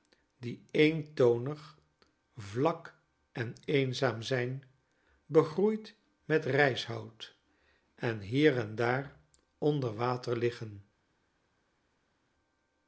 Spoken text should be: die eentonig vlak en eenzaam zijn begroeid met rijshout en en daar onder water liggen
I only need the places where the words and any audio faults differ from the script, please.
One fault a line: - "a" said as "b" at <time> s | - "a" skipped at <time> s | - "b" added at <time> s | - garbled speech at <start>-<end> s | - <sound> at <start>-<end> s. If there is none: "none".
- "hier" added at 8.2 s